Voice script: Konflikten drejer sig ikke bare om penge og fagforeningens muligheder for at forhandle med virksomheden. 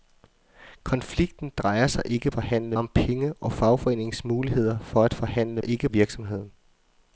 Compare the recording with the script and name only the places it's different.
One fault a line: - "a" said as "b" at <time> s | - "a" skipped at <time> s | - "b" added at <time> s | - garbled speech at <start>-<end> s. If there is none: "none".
- "bare" said as "forhandle" at 2.3 s
- "med" said as "ikke" at 5.6 s